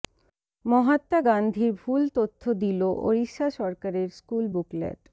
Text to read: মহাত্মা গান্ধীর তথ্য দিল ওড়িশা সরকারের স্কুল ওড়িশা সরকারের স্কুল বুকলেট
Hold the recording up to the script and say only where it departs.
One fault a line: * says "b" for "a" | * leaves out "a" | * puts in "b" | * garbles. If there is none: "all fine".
* puts in "ভুল"
* leaves out "ওড়িশা সরকারের স্কুল"